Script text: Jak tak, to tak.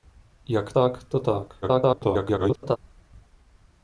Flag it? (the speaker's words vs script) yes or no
yes